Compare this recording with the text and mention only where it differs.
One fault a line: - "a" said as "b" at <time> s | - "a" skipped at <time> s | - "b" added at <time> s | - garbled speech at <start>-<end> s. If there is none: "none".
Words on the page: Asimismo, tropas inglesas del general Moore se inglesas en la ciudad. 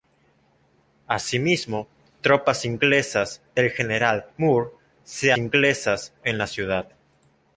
none